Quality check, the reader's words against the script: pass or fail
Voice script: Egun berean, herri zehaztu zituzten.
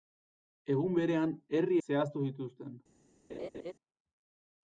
pass